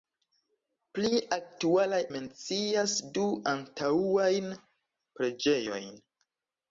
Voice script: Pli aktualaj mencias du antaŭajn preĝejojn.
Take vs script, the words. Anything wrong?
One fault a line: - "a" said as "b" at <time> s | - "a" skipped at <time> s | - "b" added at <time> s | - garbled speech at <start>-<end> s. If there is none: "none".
none